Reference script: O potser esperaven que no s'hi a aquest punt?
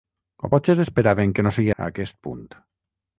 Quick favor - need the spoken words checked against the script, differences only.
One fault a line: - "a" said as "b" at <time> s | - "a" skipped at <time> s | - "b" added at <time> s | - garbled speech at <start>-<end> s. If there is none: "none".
none